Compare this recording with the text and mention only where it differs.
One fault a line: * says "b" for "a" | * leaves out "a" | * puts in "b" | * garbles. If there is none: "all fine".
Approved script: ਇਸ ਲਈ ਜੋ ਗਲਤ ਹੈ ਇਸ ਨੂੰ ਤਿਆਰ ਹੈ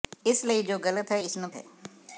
* leaves out "ਤਿਆਰ"